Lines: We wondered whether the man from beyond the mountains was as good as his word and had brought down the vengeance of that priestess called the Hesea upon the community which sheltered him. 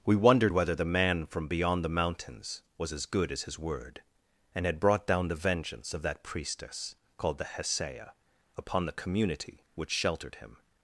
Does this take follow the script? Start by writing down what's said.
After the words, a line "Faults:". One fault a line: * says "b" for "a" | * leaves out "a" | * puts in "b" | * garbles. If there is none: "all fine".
We wondered whether the man from beyond the mountains was as good as his word and had brought down the vengeance of that priestess called the Hesea upon the community which sheltered him.
Faults:
all fine